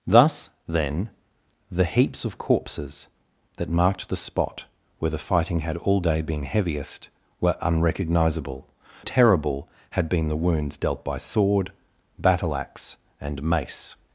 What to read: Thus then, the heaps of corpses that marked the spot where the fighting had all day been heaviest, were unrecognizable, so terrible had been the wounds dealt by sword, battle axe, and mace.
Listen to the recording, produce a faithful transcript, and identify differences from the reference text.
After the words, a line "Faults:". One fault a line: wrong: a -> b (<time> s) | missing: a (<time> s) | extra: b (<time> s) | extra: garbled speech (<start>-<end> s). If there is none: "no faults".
Thus then, the heaps of corpses that marked the spot where the fighting had all day been heaviest, were unrecognizable, terrible had been the wounds dealt by sword, battle axe, and mace.
Faults:
missing: so (8.7 s)